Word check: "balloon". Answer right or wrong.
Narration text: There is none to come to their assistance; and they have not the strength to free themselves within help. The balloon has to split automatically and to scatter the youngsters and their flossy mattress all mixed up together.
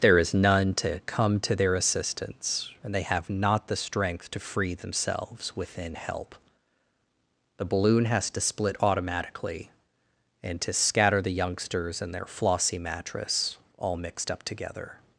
right